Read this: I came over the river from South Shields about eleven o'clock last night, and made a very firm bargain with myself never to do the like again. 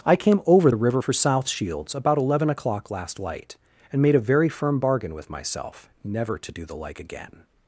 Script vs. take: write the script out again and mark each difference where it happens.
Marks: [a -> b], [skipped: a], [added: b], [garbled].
I came over the river [from -> for] South Shields about eleven o'clock last [night, -> light] and made a very firm bargain with myself never to do the like again.